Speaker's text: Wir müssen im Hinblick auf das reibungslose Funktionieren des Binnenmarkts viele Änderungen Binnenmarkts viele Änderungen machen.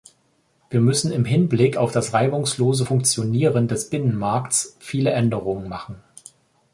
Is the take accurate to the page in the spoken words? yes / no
no